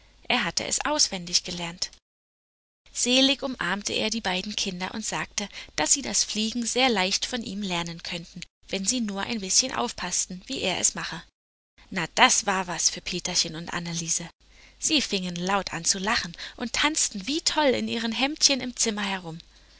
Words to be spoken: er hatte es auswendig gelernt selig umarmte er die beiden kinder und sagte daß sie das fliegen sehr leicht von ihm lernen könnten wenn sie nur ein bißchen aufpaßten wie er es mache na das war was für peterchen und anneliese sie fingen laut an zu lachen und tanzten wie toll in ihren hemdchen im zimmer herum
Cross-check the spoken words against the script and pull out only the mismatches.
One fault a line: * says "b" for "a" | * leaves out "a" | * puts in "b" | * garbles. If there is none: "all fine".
all fine